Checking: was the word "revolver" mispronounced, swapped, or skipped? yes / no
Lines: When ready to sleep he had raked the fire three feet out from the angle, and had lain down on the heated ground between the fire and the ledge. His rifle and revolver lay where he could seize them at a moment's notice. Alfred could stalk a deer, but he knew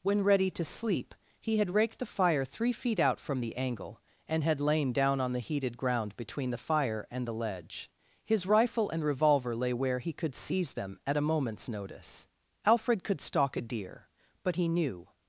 no